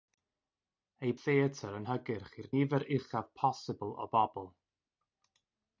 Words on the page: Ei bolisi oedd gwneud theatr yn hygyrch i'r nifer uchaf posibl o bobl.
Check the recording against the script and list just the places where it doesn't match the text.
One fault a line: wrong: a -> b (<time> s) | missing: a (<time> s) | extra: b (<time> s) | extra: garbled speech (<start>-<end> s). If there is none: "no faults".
missing: bolisi oedd gwneud (1.1 s)